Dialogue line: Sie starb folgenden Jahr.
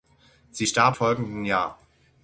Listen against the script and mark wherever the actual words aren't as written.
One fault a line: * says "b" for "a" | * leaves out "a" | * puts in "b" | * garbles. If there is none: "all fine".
all fine